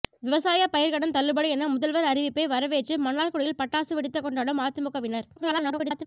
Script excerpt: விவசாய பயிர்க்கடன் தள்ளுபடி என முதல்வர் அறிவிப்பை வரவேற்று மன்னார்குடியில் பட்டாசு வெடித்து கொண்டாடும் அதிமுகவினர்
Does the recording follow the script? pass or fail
fail